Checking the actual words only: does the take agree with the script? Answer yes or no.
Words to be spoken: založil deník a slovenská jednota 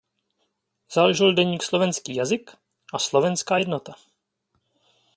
no